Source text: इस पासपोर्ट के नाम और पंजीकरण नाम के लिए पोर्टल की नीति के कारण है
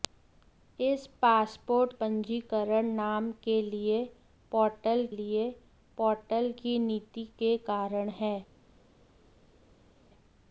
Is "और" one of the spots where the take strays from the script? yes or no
yes